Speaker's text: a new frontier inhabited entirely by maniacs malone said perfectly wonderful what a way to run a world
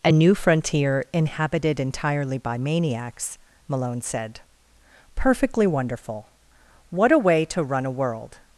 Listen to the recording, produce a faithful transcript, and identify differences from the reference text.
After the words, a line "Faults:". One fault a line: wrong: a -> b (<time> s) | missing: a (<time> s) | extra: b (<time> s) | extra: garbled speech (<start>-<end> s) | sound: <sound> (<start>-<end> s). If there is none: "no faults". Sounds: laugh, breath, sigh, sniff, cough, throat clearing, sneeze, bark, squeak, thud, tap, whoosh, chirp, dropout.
a new frontier inhabited entirely by maniacs malone said perfectly wonderful what a way to run a world
Faults:
no faults